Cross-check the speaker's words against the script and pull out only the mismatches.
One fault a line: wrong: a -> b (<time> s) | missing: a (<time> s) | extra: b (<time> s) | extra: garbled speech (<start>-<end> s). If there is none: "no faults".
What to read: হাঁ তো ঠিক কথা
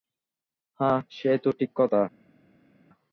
extra: সে (1.1 s)